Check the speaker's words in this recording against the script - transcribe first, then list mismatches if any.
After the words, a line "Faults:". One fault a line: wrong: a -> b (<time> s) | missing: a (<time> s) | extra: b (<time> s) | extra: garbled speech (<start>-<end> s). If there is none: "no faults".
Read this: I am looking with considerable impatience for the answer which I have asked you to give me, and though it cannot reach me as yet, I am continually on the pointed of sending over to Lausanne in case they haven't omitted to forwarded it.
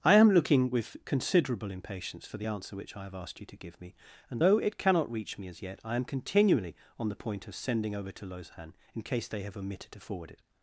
I am looking with considerable impatience for the answer which I have asked you to give me, and though it cannot reach me as yet, I am continually on the point of sending over to Lausanne in case they have omitted to forward it.
Faults:
wrong: pointed -> point (7.2 s)
wrong: haven't -> have (9.4 s)
wrong: forwarded -> forward (10.0 s)